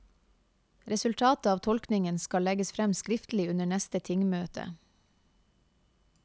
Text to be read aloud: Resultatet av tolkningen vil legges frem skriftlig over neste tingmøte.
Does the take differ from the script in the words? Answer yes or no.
yes